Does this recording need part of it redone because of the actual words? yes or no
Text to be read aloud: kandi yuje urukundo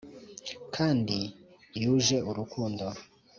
no